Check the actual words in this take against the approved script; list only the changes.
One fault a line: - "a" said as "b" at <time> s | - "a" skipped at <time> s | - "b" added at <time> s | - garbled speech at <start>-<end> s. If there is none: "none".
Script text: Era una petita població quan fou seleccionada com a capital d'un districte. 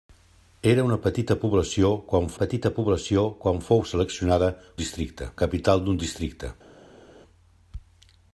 - "petita població quan" added at 2.4 s
- "com" said as "districte" at 4.8 s